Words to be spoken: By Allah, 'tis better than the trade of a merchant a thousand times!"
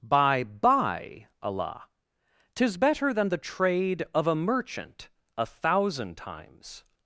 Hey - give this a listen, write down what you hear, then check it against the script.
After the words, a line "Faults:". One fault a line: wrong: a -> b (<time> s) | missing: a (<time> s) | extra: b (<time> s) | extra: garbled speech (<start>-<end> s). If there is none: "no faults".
By by Allah, 'tis better than the trade of a merchant a thousand times!"
Faults:
extra: by (0.4 s)